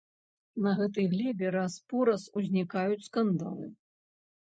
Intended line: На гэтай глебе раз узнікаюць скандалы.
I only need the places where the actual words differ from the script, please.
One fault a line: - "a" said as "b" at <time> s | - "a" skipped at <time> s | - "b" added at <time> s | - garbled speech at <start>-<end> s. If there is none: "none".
- "пораз" added at 1.9 s